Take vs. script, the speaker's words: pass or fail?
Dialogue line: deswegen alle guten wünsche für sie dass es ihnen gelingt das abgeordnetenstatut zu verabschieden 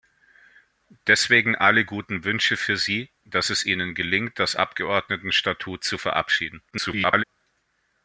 fail